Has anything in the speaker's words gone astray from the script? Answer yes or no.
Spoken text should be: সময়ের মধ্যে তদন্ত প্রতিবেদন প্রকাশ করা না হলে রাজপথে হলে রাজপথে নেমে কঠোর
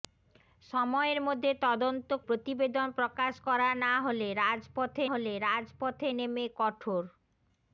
no